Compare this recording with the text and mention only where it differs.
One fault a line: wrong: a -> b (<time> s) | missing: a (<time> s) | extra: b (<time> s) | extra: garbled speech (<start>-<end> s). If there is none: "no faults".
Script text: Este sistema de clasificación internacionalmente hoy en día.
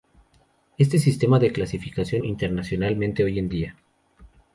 no faults